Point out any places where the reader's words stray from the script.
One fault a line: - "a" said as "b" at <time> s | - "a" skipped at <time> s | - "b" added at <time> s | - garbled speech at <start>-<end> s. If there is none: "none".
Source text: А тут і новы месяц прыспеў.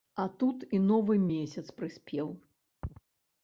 none